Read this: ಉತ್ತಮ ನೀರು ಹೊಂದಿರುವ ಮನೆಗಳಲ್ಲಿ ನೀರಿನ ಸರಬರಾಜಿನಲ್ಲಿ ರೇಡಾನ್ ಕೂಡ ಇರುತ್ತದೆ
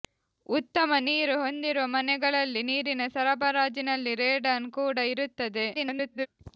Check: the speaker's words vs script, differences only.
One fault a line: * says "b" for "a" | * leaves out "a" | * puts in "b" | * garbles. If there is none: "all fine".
* garbles